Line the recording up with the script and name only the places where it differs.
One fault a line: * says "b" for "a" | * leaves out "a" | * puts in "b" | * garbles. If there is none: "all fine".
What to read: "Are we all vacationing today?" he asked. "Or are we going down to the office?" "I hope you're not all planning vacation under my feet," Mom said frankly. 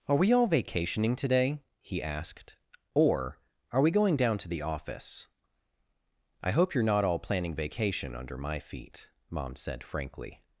all fine